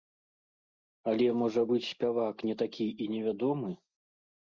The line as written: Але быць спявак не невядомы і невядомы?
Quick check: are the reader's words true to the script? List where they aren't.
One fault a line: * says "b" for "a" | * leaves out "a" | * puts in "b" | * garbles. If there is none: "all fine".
* puts in "можа"
* says "такі" for "невядомы"